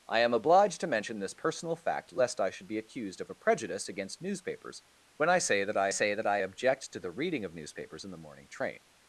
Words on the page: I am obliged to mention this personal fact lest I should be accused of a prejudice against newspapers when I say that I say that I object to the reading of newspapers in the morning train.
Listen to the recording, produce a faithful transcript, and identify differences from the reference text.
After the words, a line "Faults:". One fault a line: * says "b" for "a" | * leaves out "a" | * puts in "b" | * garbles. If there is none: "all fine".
I am obliged to mention this personal fact lest I should be accused of a prejudice against newspapers when I say that I say that I object to the reading of newspapers in the morning train.
Faults:
all fine